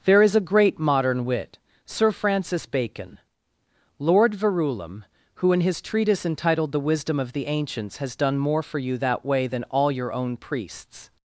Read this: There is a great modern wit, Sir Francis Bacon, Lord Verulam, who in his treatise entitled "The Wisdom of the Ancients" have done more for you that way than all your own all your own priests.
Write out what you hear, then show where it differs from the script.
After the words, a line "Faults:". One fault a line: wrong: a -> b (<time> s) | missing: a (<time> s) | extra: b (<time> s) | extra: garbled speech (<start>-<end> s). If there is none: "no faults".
There is a great modern wit, Sir Francis Bacon, Lord Verulam, who in his treatise entitled "The Wisdom of the Ancients" has done more for you that way than all your own priests.
Faults:
wrong: have -> has (8.0 s)
missing: all your own (10.4 s)